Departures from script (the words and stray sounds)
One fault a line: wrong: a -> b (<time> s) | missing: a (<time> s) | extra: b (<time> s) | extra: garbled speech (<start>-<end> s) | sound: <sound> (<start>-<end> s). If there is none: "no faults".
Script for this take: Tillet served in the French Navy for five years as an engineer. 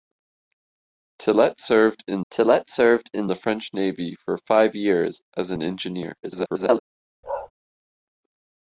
extra: tillet served in (2.3 s)
extra: garbled speech (6.2-6.8 s)
sound: bark (7.2-7.5 s)